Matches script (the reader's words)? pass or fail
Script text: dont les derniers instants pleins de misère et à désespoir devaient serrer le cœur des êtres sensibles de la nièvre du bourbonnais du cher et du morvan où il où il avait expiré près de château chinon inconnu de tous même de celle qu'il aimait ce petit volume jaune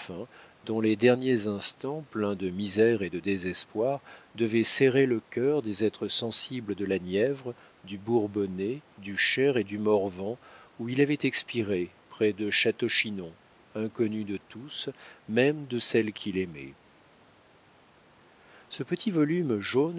fail